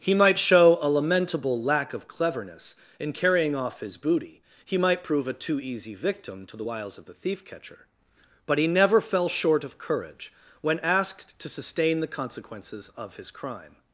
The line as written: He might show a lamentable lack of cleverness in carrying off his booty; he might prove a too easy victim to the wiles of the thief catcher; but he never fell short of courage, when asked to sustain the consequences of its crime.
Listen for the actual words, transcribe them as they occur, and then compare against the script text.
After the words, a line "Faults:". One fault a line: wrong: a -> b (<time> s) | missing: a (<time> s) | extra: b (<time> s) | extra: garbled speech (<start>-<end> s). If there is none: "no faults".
He might show a lamentable lack of cleverness in carrying off his booty; he might prove a too easy victim to the wiles of the thief catcher; but he never fell short of courage, when asked to sustain the consequences of his crime.
Faults:
wrong: its -> his (13.1 s)